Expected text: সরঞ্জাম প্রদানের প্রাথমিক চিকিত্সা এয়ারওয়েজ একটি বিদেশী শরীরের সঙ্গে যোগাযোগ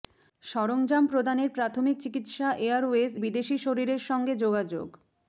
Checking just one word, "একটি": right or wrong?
wrong